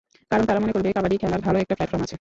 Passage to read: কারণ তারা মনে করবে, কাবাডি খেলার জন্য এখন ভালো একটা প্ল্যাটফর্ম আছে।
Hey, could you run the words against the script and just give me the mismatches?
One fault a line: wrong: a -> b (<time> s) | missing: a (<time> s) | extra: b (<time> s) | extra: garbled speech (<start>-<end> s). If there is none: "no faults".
missing: জন্য এখন (1.4 s)